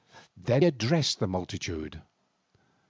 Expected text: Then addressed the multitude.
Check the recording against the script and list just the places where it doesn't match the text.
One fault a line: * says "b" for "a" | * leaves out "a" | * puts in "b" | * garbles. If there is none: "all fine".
all fine